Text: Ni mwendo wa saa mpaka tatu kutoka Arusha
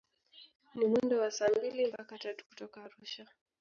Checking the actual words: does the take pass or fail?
fail